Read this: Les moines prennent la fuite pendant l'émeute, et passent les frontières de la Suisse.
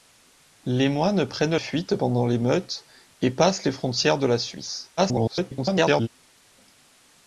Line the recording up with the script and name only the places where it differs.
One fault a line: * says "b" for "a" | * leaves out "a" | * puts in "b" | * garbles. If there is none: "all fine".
* leaves out "la"
* garbles